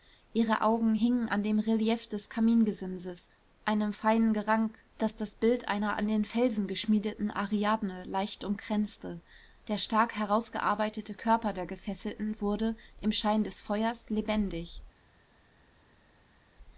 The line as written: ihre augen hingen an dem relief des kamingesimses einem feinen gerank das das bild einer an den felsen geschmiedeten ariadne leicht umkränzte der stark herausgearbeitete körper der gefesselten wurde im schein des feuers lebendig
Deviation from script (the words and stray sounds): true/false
false